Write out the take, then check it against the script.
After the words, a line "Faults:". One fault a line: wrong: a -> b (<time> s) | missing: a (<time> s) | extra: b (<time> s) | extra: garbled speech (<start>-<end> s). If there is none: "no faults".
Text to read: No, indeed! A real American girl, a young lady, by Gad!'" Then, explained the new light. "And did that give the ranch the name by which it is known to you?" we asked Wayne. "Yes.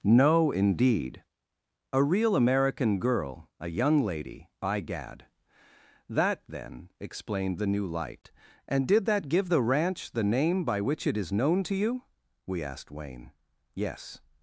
No, indeed! A real American girl, a young lady, by Gad!'" That, then, explained the new light. "And did that give the ranch the name by which it is known to you?" we asked Wayne. "Yes.
Faults:
extra: That (6.1 s)